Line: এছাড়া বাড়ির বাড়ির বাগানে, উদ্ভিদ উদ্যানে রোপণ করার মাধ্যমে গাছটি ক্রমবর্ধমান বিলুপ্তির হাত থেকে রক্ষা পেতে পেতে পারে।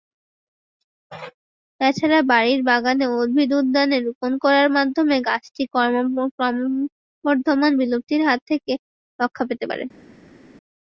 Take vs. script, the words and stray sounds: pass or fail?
fail